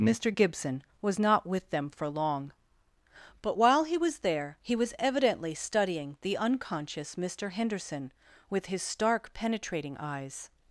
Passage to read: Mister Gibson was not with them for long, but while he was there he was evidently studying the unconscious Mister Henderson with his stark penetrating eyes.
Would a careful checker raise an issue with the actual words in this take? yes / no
no